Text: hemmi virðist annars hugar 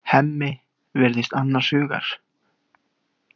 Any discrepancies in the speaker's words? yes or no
no